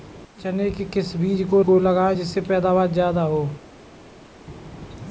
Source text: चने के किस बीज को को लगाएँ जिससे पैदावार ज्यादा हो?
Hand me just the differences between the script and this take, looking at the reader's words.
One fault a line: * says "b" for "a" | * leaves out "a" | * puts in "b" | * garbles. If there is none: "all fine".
all fine